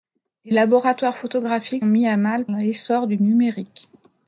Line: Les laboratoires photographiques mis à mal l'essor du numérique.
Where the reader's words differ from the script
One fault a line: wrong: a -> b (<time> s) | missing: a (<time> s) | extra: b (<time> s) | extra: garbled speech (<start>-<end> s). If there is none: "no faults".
no faults